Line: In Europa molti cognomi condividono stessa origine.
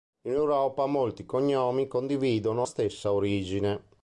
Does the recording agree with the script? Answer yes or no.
yes